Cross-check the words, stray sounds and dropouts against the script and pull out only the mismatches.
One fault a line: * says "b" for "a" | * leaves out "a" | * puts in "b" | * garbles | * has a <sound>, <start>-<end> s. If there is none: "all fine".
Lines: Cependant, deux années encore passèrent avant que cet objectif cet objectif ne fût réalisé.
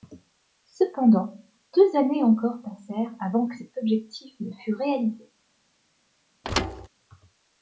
* leaves out "cet objectif"
* has a thud, 6.4-6.9 s